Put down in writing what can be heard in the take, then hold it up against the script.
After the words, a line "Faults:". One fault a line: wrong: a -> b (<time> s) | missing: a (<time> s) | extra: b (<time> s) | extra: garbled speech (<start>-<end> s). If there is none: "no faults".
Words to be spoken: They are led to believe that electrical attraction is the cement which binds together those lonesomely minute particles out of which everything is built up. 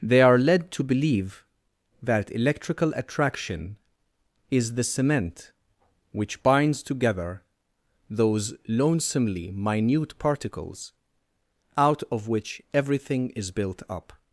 They are led to believe that electrical attraction is the cement which binds together those lonesomely minute particles out of which everything is built up.
Faults:
no faults